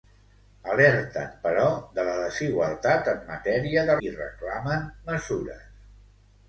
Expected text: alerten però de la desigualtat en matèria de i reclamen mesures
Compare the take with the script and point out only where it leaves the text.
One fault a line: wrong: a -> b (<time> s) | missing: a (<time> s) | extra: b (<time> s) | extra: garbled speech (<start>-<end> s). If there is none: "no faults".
no faults